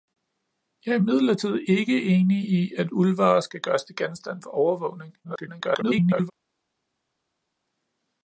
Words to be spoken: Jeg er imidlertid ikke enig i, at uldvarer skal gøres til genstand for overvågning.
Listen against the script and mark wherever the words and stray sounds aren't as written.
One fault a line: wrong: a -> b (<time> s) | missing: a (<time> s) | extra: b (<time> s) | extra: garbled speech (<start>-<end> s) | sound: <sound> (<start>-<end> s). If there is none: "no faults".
extra: garbled speech (5.2-6.3 s)